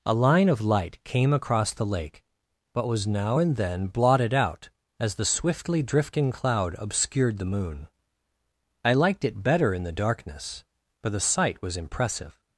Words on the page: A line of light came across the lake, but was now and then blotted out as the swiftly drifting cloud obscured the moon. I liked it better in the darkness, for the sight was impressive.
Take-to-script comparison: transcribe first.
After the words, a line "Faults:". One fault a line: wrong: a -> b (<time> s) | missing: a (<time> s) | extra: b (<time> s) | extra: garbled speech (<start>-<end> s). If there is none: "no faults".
A line of light came across the lake, but was now and then blotted out as the swiftly drifting cloud obscured the moon. I liked it better in the darkness, for the sight was impressive.
Faults:
no faults